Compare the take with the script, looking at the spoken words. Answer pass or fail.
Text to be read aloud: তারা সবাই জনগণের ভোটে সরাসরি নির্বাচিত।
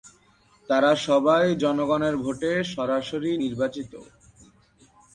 pass